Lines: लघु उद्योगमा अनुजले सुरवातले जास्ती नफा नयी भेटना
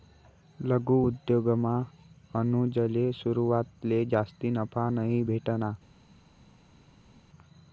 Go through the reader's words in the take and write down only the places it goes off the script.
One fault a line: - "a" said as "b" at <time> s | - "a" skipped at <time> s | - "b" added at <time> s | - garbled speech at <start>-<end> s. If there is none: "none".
none